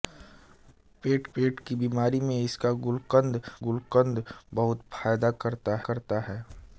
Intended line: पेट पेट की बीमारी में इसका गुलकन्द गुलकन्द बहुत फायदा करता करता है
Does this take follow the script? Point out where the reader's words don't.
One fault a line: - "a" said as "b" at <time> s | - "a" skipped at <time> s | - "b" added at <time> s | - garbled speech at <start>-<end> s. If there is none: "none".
none